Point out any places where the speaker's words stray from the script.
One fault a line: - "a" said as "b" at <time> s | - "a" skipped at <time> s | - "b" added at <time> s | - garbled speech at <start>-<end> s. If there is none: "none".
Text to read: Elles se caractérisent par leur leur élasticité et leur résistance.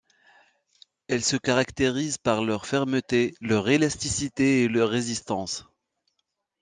- "fermeté" added at 2.6 s